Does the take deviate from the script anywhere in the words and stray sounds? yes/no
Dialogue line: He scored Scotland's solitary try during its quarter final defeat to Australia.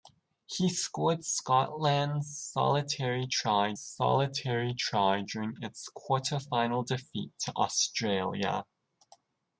yes